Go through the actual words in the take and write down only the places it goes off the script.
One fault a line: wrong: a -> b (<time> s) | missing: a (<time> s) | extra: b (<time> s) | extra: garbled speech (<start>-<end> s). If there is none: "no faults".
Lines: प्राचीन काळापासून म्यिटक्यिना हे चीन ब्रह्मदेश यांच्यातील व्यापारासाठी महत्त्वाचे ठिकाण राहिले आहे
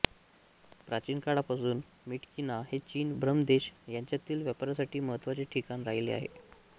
no faults